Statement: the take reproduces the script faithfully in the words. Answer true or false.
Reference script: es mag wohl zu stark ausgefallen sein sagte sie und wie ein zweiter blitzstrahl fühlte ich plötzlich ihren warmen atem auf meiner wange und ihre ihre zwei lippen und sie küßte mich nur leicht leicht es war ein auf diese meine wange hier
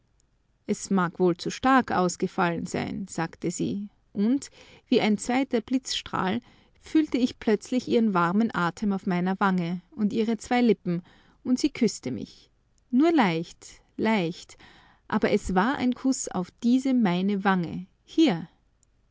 false